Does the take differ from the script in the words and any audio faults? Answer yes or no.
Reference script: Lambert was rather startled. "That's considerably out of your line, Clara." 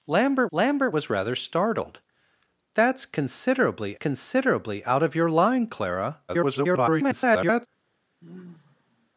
yes